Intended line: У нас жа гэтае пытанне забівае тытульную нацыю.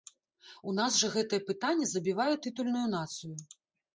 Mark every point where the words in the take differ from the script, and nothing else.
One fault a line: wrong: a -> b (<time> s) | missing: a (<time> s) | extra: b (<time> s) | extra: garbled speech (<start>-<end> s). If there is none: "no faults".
no faults